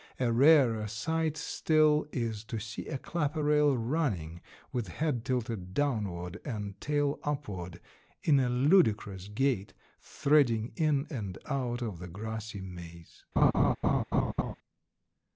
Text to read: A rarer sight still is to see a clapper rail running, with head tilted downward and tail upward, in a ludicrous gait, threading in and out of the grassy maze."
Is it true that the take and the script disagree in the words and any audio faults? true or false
true